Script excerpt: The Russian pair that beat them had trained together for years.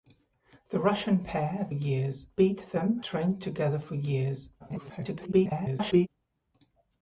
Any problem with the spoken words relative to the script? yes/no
yes